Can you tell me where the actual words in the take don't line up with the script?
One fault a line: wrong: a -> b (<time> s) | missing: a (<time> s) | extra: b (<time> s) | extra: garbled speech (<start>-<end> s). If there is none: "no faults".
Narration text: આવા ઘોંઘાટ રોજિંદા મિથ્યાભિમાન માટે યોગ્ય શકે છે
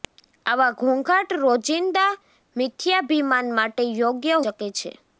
no faults